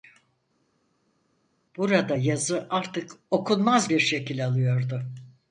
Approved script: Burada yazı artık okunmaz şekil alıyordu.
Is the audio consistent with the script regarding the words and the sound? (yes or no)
no